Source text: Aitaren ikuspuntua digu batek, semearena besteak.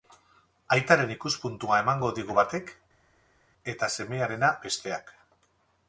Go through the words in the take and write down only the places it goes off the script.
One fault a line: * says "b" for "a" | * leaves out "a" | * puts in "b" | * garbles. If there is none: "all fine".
* puts in "emango"
* puts in "eta"